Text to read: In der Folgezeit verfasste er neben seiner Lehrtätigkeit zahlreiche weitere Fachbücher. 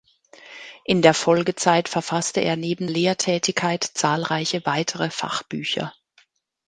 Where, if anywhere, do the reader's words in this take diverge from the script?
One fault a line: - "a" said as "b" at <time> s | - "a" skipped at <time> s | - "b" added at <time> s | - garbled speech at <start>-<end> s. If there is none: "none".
- "seiner" skipped at 2.9 s